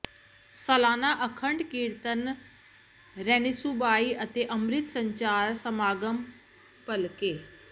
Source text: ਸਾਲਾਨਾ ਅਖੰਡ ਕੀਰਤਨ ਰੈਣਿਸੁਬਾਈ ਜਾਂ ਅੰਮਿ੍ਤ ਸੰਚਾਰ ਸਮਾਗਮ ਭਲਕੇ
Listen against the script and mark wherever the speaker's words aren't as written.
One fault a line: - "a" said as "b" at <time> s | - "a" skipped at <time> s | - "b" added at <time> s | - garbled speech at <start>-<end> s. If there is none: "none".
- "ਜਾਂ" said as "ਅਤੇ" at 4.2 s